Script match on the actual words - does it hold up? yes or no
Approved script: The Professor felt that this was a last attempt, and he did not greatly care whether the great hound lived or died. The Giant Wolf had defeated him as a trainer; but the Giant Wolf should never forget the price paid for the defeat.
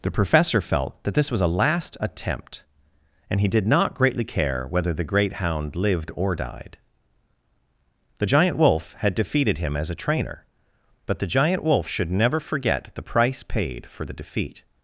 yes